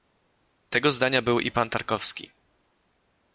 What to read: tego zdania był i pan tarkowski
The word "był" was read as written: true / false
true